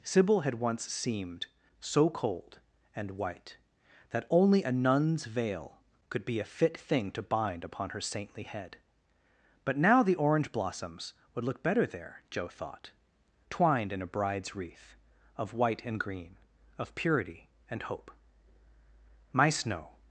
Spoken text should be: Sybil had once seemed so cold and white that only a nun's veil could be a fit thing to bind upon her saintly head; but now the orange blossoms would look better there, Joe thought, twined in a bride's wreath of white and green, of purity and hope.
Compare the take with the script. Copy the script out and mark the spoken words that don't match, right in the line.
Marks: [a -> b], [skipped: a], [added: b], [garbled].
Sybil had once seemed so cold and white that only a nun's veil could be a fit thing to bind upon her saintly head; but now the orange blossoms would look better there, Joe thought, twined in a bride's wreath of white and green, of purity and hope. [added: My Snow]